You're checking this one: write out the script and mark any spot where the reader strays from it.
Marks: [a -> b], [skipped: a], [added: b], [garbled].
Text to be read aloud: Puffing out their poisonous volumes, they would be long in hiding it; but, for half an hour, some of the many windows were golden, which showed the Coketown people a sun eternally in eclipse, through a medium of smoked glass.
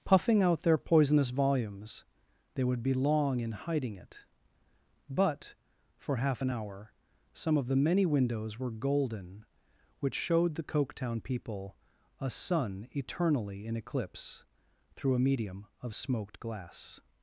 Puffing out their poisonous volumes, they would be long in hiding it; but, for half an hour, some of the many windows were golden, which showed the Coketown people a sun eternally in eclipse, through a medium of smoked glass.